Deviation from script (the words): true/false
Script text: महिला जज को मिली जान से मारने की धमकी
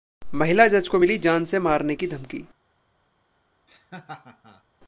false